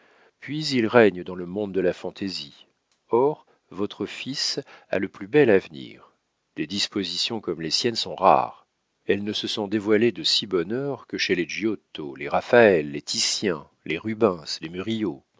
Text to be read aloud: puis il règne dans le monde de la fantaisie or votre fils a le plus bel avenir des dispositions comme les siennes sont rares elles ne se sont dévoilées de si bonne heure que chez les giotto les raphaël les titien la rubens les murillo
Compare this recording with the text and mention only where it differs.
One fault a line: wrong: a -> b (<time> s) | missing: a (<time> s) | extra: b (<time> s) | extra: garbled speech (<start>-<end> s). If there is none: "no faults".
wrong: la -> les (13.8 s)